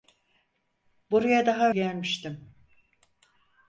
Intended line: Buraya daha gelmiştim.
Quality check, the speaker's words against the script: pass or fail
pass